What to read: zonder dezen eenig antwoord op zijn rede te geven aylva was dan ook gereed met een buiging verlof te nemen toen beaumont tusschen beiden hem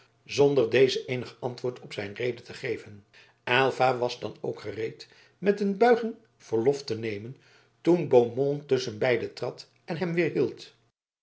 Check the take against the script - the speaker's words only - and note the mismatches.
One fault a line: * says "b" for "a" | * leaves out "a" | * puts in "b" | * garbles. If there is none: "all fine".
* puts in "trad en"